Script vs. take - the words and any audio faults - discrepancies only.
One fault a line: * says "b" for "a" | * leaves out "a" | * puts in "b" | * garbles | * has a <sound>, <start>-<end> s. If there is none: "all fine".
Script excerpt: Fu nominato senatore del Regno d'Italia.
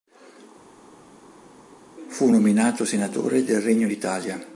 all fine